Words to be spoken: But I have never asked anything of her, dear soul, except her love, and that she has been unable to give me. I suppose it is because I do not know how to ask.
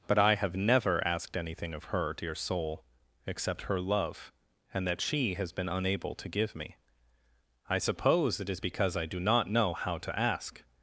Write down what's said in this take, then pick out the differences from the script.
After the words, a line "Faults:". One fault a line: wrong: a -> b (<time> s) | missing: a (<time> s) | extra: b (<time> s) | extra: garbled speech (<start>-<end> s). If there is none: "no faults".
But I have never asked anything of her, dear soul, except her love, and that she has been unable to give me. I suppose it is because I do not know how to ask.
Faults:
no faults